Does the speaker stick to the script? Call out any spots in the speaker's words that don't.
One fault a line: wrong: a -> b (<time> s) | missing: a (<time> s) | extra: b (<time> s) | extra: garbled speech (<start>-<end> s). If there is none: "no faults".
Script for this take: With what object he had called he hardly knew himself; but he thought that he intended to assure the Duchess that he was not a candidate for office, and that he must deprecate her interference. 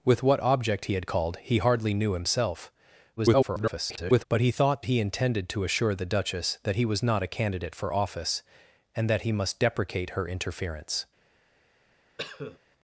extra: garbled speech (3.2-4.3 s)
missing: that (4.8 s)